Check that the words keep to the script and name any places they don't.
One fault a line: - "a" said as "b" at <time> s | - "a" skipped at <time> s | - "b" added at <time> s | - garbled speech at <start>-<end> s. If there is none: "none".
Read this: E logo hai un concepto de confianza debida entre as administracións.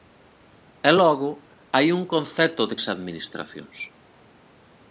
- "confianza debida entre" skipped at 2.8 s